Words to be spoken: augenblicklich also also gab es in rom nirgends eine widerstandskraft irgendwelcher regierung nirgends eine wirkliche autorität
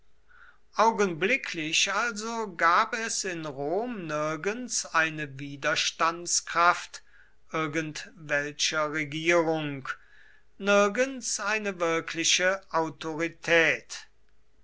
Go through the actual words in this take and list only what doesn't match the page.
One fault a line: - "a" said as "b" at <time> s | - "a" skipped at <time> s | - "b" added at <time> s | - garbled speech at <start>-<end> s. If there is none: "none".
- "also" skipped at 2.5 s